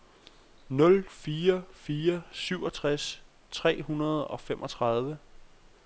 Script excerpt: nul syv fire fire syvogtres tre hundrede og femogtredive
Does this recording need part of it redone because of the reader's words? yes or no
yes